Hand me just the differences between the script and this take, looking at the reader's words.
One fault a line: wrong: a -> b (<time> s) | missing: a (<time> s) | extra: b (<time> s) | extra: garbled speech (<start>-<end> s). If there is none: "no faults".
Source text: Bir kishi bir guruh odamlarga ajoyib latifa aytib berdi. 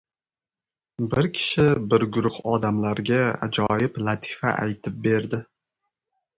no faults